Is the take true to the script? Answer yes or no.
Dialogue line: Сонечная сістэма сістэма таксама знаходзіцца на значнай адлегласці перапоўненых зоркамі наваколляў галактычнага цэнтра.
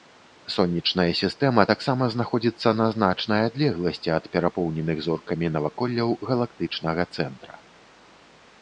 no